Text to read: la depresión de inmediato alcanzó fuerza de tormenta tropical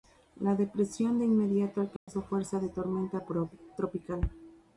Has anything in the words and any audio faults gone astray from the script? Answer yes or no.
yes